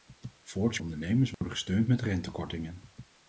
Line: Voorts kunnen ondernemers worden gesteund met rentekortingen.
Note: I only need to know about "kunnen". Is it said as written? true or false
false